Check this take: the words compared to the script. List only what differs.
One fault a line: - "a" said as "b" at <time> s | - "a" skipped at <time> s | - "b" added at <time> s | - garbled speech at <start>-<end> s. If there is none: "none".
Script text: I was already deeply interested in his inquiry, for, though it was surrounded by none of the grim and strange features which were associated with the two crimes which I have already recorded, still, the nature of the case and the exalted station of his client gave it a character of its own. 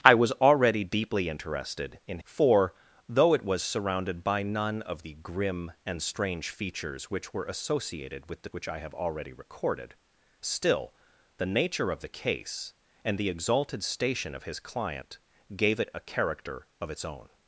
- "his inquiry" skipped at 2.2 s
- "two crimes" skipped at 8.5 s